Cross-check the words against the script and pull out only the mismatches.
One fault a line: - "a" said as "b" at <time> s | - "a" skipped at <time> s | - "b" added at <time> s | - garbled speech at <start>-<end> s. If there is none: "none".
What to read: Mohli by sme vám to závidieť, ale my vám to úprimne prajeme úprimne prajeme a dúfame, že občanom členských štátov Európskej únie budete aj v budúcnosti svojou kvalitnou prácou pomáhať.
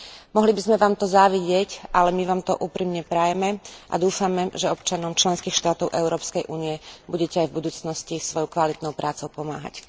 - "úprimne prajeme" skipped at 3.6 s